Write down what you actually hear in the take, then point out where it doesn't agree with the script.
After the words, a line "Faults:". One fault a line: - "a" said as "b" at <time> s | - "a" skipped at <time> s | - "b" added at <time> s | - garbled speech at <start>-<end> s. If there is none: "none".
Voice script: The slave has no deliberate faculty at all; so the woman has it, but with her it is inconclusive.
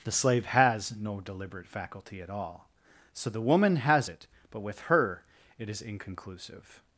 The slave has no deliberate faculty at all; so the woman has it, but with her it is inconclusive.
Faults:
none